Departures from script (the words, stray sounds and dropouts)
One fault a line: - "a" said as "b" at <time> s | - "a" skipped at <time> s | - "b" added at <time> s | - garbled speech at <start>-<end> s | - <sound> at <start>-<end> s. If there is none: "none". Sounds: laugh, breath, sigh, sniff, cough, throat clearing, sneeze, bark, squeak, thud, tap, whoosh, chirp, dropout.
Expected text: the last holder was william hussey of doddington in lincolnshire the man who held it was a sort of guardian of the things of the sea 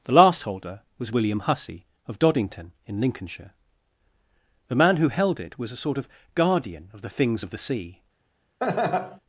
- laugh at 8.6-9.2 s